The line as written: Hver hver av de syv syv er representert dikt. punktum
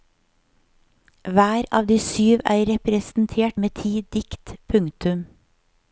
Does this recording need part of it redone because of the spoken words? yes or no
yes